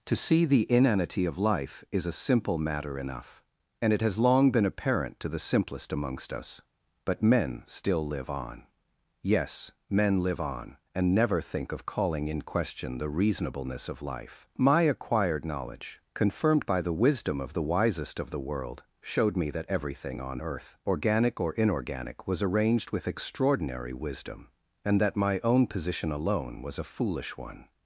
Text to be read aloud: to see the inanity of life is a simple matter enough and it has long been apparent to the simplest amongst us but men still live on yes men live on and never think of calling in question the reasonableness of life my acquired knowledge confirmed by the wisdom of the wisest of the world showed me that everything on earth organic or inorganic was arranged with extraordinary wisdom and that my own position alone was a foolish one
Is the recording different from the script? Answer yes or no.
no